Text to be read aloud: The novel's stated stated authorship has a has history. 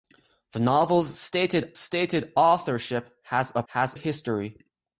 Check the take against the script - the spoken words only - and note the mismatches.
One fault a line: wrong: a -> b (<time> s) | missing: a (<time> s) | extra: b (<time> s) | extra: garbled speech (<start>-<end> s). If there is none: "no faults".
no faults